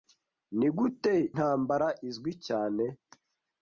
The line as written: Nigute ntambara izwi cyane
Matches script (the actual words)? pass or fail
pass